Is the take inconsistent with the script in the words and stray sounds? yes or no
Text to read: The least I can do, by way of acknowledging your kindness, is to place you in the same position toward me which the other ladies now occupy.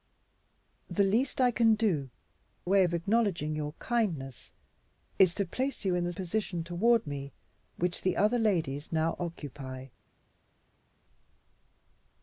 yes